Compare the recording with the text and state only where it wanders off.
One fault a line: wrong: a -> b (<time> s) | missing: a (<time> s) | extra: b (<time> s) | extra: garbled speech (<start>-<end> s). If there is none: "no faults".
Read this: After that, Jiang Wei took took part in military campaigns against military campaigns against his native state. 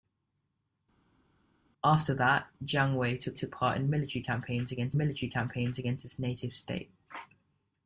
no faults